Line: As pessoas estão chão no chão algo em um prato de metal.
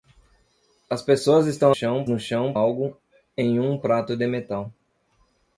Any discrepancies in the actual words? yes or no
no